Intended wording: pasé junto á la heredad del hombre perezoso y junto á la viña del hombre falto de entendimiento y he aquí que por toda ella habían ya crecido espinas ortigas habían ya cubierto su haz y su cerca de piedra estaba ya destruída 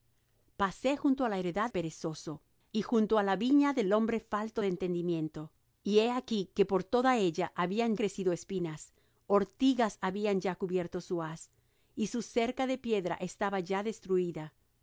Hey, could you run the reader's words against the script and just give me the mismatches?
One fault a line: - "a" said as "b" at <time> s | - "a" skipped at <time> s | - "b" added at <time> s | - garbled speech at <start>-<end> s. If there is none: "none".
- "del hombre" skipped at 1.7 s
- "ya" skipped at 7.9 s